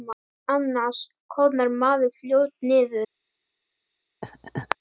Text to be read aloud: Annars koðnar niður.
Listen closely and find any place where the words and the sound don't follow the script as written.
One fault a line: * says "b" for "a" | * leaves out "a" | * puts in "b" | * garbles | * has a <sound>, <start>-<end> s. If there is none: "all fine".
* puts in "maður fljótt"
* has a laugh, 4.2-4.8 s